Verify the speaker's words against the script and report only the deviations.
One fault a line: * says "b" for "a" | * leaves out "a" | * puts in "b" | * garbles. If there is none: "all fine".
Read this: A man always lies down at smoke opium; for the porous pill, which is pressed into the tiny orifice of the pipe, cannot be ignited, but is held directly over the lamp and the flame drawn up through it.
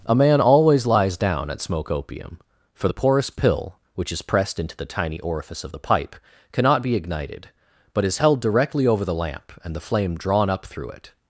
all fine